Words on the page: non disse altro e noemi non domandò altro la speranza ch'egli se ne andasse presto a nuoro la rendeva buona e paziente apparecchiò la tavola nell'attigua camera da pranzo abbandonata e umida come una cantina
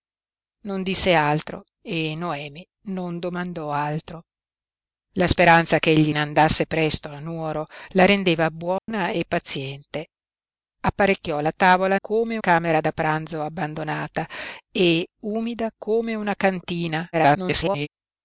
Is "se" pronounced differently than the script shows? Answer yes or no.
yes